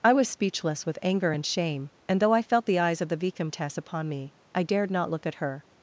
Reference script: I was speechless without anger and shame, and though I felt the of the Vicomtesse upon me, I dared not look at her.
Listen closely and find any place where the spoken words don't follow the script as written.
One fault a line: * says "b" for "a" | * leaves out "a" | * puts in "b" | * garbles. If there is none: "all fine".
* says "with" for "without"
* puts in "eyes"